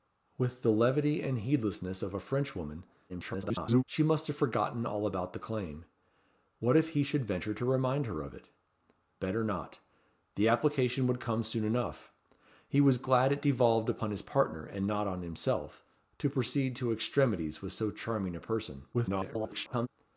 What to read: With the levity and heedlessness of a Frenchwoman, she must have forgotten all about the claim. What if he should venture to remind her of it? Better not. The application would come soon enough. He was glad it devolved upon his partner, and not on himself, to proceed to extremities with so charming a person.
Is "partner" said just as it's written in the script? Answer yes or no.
yes